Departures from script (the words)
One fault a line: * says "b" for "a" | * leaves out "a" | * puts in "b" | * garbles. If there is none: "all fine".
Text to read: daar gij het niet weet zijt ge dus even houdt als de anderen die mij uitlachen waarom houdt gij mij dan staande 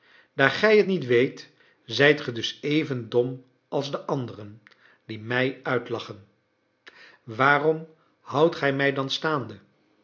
* says "dom" for "houdt"